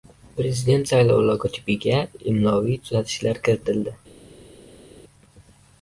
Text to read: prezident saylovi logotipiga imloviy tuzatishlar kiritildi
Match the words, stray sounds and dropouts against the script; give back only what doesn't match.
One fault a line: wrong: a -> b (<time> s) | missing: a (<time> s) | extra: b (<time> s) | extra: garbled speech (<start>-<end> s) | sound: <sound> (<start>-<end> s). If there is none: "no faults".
no faults